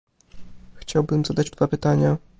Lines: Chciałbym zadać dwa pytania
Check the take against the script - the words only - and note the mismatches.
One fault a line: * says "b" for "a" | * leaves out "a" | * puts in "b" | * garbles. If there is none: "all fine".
all fine